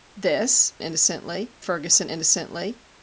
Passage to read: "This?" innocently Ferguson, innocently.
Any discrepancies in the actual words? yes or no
no